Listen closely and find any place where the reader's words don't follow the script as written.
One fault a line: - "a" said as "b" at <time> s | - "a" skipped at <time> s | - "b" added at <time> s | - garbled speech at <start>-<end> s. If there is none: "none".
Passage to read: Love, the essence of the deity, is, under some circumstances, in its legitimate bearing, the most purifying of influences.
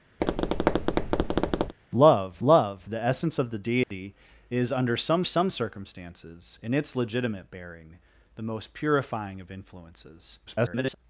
- "love" added at 2.4 s
- "some" added at 5.2 s
- garbled speech at 10.5-10.9 s